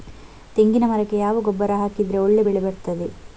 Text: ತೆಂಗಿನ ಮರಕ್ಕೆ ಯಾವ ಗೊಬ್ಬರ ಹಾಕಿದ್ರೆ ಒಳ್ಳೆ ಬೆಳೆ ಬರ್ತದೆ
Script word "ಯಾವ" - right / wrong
right